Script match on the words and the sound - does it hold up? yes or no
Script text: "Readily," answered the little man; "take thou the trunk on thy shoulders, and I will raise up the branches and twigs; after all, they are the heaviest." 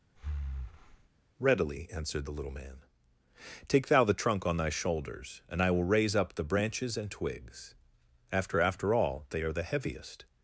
no